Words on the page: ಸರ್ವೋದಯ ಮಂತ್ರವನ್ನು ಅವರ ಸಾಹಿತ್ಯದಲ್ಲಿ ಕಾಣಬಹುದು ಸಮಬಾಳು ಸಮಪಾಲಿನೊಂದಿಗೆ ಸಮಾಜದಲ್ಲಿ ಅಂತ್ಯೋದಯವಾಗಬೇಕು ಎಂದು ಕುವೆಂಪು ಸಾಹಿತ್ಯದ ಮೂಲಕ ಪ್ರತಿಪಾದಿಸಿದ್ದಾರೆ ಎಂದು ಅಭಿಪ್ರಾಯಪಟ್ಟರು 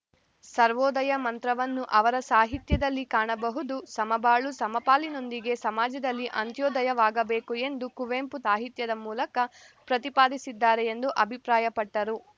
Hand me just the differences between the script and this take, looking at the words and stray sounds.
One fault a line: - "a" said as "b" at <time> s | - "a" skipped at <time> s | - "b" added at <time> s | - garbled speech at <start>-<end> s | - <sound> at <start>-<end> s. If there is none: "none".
none